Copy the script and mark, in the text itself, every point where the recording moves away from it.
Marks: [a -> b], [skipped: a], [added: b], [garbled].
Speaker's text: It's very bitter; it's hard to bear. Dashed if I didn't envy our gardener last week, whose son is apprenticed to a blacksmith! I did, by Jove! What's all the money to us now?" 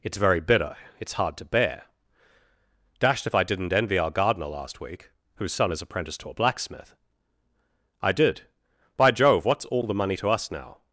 It's very bitter; it's hard to bear. Dashed if I didn't envy our gardener last week, whose son is apprenticed to a blacksmith! I did, by Jove! What's all the money to us now?"